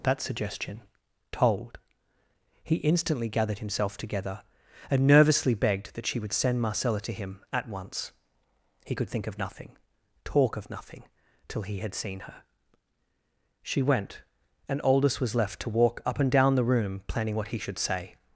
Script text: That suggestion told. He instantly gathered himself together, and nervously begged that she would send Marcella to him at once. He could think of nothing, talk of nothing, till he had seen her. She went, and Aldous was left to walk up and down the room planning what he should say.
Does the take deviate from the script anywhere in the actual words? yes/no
no